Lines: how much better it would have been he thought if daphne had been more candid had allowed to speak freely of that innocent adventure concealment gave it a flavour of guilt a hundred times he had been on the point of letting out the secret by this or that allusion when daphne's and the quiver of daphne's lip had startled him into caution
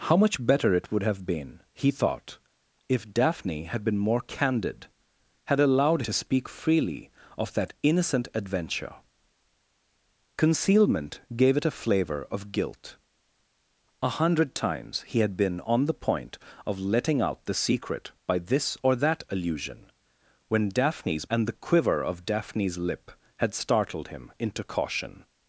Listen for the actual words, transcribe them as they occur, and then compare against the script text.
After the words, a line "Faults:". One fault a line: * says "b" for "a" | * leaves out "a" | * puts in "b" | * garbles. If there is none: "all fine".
how much better it would have been he thought if daphne had been more candid had allowed to speak freely of that innocent adventure concealment gave it a flavour of guilt a hundred times he had been on the point of letting out the secret by this or that allusion when daphne's and the quiver of daphne's lip had startled him into caution
Faults:
all fine